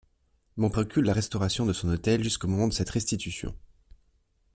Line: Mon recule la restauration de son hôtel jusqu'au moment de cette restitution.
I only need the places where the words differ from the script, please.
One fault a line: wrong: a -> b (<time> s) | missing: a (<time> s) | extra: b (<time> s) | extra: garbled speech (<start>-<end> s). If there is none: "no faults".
no faults